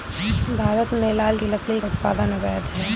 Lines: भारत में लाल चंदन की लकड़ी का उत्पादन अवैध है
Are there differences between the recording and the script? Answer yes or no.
yes